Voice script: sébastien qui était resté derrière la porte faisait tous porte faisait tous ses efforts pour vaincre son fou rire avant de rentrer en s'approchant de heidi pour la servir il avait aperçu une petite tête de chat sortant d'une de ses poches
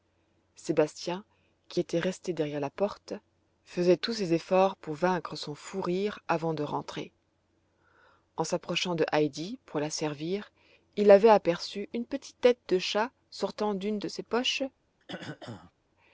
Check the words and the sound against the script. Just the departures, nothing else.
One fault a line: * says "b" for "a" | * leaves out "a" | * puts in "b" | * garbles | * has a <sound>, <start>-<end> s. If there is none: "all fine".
* leaves out "porte faisait tous"
* has a throat clearing, 15.0-15.7 s